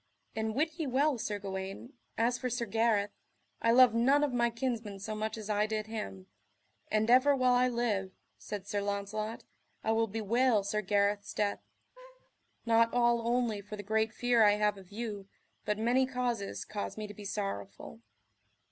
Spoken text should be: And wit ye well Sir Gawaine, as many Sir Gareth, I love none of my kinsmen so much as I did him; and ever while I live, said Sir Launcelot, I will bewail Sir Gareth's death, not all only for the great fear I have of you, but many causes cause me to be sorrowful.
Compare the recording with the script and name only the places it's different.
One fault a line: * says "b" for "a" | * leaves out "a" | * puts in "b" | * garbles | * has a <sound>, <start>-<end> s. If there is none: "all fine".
* says "for" for "many"
* has a laugh, 12.0-12.3 s